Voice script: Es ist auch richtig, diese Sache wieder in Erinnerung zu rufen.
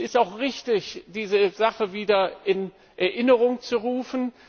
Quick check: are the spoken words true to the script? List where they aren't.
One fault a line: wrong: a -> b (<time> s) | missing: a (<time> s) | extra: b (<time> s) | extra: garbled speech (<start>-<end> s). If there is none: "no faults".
no faults